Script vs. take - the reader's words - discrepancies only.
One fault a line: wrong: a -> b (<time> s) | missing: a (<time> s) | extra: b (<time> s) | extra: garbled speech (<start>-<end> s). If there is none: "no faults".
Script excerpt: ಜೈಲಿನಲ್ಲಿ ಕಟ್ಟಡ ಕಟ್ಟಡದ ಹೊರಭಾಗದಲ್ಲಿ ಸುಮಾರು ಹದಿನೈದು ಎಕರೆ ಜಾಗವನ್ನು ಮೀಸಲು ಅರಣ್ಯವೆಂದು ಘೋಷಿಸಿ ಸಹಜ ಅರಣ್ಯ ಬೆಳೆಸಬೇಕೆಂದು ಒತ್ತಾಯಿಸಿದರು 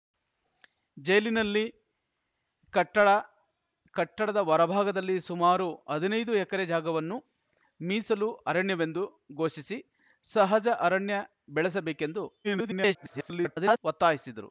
extra: garbled speech (12.4-13.8 s)